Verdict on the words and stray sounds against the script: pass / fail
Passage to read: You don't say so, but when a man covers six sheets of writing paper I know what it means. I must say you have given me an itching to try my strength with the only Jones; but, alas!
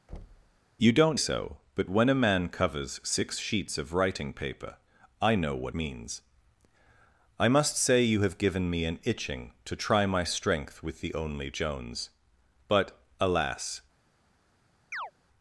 fail